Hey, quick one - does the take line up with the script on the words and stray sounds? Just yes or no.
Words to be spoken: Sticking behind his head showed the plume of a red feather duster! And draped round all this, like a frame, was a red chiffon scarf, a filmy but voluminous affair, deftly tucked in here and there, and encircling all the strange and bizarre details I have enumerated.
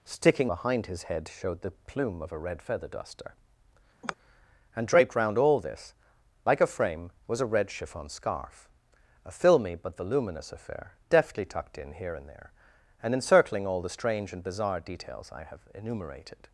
no